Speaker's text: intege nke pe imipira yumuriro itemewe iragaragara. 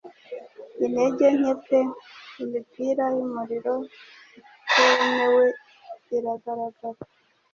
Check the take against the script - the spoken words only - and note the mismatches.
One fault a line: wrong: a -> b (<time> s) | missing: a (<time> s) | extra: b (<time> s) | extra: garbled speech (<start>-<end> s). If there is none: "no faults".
no faults